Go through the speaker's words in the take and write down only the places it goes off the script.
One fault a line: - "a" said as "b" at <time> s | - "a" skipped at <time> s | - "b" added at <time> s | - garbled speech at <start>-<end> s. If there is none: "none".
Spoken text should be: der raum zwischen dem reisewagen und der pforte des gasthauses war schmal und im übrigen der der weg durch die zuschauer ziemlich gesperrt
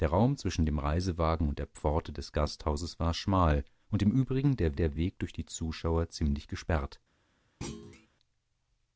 none